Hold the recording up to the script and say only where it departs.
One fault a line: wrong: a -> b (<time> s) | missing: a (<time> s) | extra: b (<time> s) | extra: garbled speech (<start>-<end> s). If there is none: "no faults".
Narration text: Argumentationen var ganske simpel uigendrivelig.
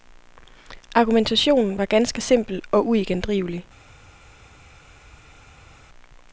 extra: og (2.7 s)